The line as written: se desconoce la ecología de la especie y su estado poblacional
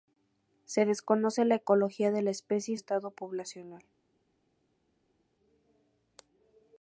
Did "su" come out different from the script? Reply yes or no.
yes